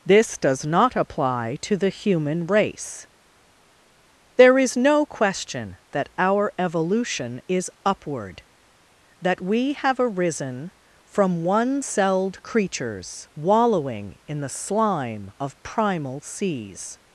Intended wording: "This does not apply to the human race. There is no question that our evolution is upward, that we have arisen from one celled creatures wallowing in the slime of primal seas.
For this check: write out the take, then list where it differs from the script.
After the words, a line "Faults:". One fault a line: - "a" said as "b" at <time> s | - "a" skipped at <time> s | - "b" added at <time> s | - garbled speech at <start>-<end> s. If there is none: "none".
"This does not apply to the human race. There is no question that our evolution is upward, that we have arisen from one celled creatures wallowing in the slime of primal seas.
Faults:
none